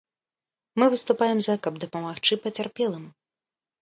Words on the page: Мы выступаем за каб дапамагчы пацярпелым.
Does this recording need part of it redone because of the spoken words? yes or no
no